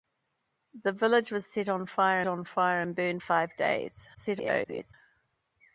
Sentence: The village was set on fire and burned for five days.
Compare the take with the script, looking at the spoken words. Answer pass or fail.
fail